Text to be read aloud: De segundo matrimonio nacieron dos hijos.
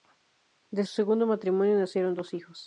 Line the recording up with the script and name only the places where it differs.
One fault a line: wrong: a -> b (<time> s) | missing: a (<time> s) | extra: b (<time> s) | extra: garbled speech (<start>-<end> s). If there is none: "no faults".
no faults